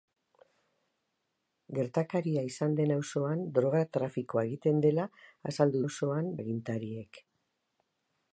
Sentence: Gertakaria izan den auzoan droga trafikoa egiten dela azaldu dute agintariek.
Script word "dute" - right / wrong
wrong